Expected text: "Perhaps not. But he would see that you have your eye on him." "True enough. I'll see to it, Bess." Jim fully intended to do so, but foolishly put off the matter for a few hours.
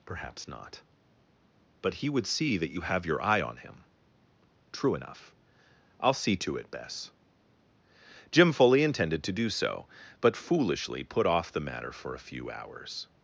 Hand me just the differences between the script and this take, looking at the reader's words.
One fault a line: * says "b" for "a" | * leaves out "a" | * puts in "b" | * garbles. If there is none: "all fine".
all fine